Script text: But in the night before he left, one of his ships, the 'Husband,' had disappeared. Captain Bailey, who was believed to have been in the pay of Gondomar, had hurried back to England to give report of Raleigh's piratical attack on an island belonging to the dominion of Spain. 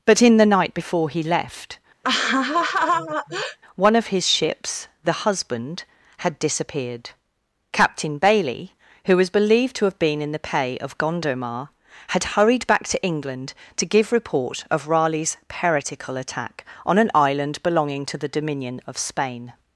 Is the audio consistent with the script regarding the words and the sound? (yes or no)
no